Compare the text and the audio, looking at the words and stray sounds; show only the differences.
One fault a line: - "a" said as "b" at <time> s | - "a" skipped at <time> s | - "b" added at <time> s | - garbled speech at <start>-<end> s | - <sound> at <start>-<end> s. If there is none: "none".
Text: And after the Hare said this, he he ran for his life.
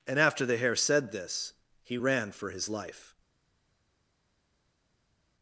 - "he" skipped at 2.0 s